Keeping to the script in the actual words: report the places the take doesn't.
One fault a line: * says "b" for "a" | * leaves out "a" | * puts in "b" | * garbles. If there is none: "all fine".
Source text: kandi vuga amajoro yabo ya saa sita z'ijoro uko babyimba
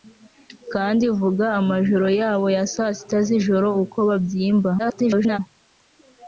* garbles